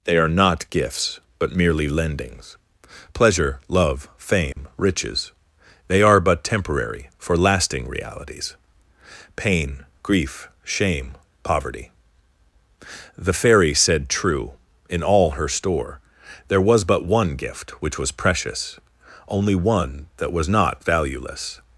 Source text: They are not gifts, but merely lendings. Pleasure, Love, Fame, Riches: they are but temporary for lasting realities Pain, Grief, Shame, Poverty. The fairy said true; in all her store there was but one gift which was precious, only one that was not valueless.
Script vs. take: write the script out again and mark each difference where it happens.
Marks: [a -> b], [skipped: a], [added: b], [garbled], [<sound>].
They are not gifts, but merely lendings. Pleasure, Love, Fame, [dropout] Riches: they are but temporary for lasting realities Pain, Grief, Shame, Poverty. The fairy said true; in all her store there was but one gift which was precious, only one that was not valueless.